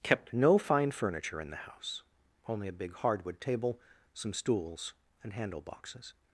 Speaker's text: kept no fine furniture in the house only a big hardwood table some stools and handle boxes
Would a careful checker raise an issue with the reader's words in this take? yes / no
no